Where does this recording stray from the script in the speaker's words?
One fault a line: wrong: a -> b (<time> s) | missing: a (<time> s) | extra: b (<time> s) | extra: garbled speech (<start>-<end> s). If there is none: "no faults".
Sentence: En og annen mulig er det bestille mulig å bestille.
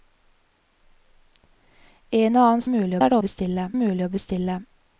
no faults